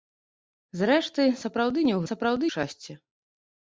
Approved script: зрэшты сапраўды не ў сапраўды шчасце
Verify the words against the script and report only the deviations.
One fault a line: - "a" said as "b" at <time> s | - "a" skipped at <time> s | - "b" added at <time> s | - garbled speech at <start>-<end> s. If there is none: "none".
none